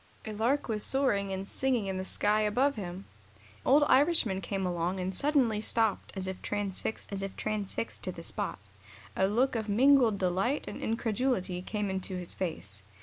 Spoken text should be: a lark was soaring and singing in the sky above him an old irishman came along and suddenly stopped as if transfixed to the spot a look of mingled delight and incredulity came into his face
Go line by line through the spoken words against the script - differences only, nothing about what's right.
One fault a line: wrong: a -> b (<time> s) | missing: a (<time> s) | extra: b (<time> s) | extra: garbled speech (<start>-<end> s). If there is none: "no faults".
missing: an (3.0 s)
extra: as if transfixed (7.1 s)